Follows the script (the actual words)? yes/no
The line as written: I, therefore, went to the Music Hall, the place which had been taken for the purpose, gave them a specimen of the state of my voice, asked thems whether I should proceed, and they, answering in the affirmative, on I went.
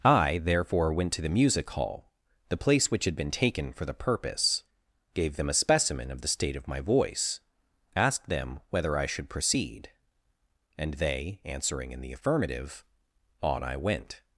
no